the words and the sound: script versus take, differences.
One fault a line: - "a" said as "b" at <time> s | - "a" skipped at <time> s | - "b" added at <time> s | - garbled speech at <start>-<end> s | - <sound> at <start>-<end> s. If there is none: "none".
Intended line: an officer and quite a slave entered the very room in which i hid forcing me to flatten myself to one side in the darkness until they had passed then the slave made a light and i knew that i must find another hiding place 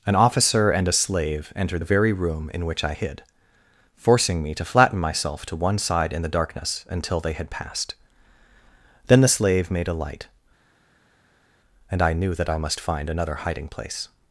- "quite" skipped at 0.9 s